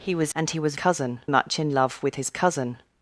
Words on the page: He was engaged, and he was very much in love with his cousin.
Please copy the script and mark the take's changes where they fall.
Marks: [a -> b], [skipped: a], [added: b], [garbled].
He was [skipped: engaged,] and he was [very -> cousin] much in love with his cousin.